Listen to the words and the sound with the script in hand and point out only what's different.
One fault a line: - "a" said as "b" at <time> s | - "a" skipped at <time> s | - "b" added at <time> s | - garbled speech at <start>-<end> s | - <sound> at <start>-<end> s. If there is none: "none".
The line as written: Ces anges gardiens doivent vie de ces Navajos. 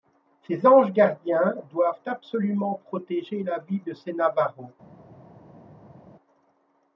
- "absolument protéger la" added at 2.1 s